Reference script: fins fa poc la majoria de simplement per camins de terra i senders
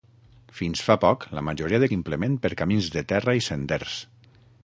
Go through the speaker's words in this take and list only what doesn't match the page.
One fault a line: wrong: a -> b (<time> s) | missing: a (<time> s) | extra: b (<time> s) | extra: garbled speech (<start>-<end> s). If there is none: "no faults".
no faults